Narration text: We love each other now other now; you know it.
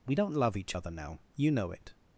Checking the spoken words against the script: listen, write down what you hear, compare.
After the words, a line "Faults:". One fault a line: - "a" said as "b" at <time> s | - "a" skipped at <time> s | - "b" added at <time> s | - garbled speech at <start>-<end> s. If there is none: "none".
We don't love each other now; you know it.
Faults:
- "don't" added at 0.1 s
- "other now" skipped at 1.2 s